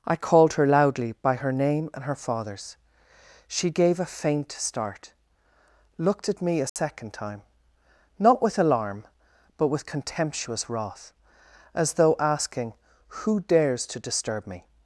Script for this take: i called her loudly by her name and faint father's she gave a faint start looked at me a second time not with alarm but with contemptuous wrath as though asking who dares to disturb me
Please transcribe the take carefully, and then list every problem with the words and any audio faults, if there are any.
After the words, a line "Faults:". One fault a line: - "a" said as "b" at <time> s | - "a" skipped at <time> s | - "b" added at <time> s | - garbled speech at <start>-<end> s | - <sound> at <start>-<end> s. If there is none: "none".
i called her loudly by her name and her father's she gave a faint start looked at me a second time not with alarm but with contemptuous wrath as though asking who dares to disturb me
Faults:
- "faint" said as "her" at 2.0 s
- dropout at 6.7-6.8 s